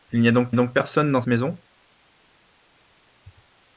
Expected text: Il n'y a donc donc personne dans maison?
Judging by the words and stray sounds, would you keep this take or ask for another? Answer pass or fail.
pass